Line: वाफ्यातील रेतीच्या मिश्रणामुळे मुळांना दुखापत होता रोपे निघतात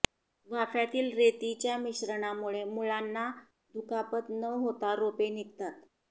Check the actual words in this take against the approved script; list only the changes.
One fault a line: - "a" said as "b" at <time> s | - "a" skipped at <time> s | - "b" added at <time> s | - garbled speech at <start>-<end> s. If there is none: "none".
- "न" added at 4.3 s